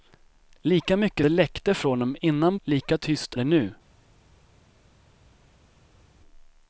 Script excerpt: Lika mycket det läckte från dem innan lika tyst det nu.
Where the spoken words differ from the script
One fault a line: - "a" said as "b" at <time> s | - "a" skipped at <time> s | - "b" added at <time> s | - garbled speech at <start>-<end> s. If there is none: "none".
none